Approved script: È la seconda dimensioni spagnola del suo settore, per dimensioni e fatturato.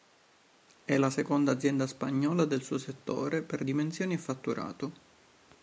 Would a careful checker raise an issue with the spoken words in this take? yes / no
yes